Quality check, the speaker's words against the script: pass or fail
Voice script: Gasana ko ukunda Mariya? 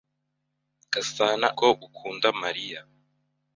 pass